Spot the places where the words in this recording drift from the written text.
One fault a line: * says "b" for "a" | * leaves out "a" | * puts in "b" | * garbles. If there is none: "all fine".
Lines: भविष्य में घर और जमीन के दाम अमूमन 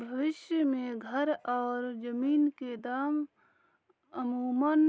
all fine